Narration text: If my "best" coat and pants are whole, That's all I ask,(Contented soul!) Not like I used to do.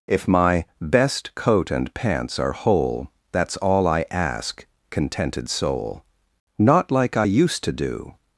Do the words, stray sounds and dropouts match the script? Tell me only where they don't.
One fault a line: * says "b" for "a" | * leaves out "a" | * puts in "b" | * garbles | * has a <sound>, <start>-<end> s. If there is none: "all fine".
all fine